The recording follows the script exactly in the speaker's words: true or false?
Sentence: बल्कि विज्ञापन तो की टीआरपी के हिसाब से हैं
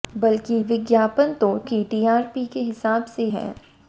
true